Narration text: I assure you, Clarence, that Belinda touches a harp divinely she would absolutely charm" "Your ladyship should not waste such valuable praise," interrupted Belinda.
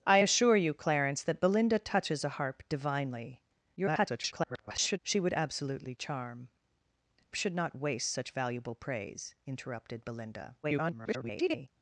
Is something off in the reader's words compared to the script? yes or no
yes